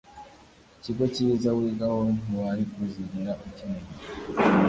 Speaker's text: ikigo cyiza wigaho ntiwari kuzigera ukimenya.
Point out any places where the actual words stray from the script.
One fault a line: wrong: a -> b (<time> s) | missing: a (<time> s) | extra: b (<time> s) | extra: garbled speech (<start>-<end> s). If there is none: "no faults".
no faults